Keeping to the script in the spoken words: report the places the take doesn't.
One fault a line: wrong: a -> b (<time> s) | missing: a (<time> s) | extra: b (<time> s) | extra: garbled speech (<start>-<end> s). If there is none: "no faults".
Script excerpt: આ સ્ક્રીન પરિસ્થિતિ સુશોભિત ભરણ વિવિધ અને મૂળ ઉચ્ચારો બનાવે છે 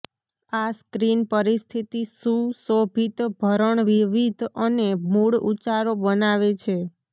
no faults